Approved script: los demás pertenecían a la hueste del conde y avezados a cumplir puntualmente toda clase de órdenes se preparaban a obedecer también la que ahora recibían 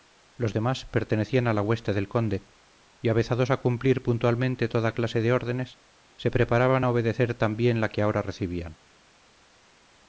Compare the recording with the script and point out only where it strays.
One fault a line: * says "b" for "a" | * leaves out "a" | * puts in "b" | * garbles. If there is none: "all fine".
all fine